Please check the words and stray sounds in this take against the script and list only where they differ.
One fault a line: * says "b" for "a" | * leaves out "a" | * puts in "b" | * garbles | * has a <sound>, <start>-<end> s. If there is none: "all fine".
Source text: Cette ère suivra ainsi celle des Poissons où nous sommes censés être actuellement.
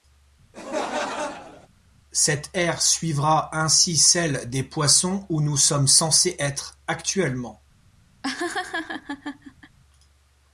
* has a laugh, 0.5-1.7 s
* has a laugh, 8.2-9.8 s